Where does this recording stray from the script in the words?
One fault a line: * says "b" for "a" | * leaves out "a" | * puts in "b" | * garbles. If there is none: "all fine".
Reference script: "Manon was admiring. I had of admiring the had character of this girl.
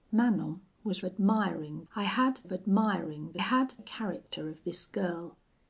all fine